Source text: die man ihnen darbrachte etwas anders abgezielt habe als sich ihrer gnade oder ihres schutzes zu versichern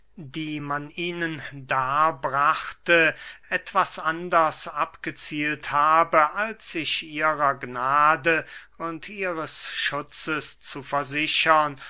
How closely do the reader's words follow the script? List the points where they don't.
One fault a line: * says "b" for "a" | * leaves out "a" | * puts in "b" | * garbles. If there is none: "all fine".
* says "und" for "oder"